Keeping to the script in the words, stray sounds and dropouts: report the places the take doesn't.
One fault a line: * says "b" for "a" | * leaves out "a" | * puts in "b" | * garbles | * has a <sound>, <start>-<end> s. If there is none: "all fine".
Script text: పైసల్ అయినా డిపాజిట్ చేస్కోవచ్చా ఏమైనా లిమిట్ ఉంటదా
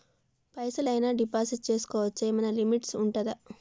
all fine